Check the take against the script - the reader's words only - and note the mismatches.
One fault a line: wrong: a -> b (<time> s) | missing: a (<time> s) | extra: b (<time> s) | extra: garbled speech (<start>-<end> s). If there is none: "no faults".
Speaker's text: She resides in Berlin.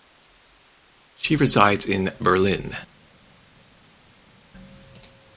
no faults